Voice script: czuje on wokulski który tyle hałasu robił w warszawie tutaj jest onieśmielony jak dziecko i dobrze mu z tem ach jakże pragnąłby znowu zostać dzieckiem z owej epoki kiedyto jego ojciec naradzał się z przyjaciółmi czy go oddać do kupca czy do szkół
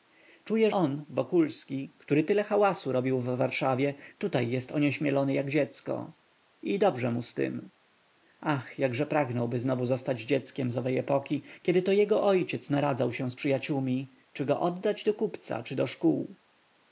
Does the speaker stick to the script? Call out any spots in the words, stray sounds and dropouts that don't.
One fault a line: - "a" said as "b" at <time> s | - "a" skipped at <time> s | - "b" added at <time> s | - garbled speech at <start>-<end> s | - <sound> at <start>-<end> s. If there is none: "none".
none